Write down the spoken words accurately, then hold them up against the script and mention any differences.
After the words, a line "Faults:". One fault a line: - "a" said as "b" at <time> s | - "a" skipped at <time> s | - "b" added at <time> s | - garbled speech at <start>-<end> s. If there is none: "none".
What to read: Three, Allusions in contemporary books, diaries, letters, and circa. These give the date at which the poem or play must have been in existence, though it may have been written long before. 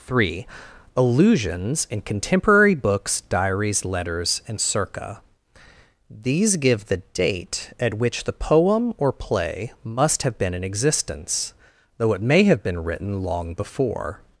Three, Allusions in contemporary books, diaries, letters, and circa. These give the date at which the poem or play must have been in existence, though it may have been written long before.
Faults:
none